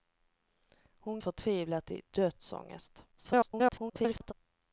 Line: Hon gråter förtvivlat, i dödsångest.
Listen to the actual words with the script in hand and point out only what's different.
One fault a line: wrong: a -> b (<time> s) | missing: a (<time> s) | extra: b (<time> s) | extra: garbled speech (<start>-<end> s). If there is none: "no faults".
missing: gråter (1.2 s)
extra: garbled speech (3.1-4.3 s)